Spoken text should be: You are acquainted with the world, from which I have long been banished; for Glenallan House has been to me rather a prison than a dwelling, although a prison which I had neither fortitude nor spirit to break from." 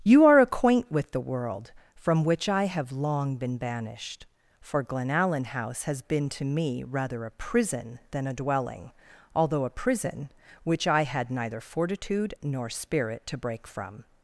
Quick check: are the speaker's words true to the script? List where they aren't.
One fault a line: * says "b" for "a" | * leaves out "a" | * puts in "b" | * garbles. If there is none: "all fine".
* says "acquaint" for "acquainted"